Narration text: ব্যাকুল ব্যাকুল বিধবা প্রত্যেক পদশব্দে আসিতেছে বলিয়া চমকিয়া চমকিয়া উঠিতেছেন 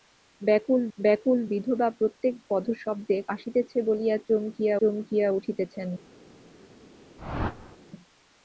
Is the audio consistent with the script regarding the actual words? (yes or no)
yes